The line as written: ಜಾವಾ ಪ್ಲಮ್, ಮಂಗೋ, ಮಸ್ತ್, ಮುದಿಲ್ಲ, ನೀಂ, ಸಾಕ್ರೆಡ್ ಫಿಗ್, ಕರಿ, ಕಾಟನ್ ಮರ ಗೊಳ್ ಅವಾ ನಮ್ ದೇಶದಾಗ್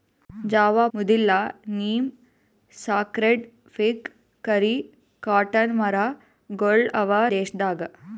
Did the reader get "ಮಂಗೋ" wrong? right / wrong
wrong